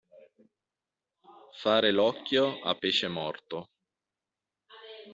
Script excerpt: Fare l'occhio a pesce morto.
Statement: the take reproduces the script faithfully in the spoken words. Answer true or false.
true